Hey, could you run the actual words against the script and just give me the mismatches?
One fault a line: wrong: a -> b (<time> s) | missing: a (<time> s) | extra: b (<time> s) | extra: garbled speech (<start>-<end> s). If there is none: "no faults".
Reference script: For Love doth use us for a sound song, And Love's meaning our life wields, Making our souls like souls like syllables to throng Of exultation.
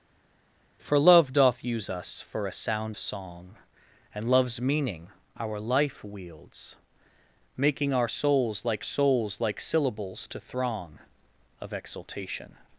no faults